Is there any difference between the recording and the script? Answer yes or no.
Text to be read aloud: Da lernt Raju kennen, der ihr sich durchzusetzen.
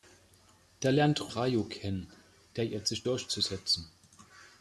no